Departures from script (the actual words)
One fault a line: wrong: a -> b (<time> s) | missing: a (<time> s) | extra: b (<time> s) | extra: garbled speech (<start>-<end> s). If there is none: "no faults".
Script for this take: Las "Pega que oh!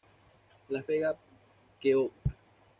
no faults